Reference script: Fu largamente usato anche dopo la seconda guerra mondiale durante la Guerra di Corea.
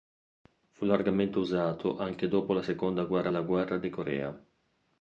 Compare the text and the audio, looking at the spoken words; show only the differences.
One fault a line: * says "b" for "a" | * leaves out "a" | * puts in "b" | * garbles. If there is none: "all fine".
* leaves out "mondiale durante"